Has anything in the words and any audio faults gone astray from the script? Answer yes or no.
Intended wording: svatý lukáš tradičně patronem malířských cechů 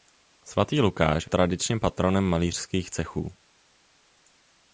no